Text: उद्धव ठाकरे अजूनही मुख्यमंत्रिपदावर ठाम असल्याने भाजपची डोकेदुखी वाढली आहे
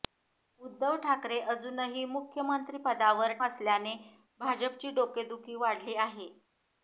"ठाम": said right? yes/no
no